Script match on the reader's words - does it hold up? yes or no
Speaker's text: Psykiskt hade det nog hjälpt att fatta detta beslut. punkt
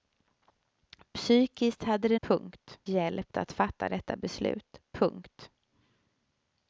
no